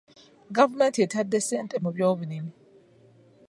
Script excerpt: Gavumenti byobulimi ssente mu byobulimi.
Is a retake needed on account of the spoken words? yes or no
yes